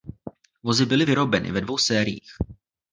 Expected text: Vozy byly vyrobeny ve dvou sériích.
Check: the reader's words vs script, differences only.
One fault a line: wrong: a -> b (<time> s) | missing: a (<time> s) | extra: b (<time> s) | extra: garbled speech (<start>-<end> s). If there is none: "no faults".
no faults